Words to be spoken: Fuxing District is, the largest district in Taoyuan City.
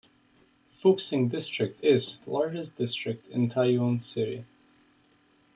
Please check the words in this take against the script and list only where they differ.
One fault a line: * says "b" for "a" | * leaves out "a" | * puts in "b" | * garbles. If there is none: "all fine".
all fine